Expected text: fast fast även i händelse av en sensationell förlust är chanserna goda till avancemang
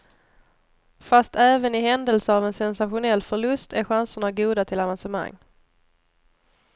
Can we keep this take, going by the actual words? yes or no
no